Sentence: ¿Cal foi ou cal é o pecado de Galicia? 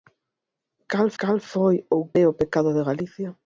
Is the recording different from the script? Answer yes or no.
yes